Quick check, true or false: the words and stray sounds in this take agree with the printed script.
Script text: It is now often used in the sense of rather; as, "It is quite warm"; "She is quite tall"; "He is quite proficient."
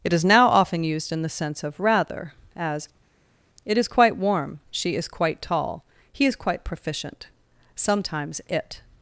false